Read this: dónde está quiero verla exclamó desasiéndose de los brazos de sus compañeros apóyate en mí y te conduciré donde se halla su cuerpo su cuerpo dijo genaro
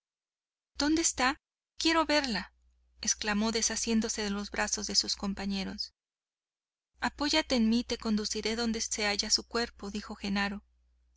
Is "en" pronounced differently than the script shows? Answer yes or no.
no